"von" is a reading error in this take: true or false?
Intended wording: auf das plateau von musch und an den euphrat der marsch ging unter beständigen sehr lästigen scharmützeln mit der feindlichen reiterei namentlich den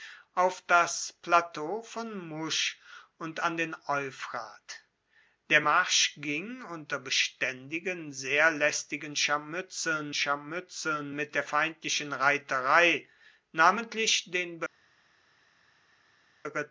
false